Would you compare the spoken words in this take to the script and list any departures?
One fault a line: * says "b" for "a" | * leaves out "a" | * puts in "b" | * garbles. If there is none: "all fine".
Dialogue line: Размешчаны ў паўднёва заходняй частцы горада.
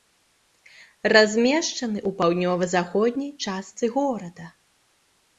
all fine